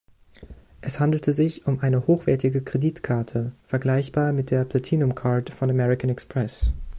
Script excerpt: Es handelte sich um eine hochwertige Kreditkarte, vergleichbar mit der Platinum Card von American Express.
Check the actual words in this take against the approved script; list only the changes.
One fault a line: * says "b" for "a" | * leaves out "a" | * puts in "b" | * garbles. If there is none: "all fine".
all fine